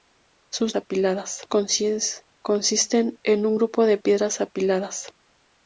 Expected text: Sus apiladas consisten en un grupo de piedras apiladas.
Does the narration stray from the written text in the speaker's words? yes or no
no